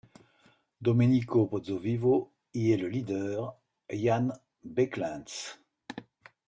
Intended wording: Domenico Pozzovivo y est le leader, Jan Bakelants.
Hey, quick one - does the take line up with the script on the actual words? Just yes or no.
yes